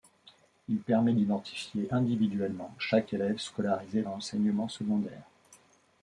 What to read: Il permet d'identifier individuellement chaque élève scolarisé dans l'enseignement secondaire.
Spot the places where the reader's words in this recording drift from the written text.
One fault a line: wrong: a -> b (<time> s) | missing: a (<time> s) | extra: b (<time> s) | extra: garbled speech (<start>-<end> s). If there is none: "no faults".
missing: dans (4.0 s)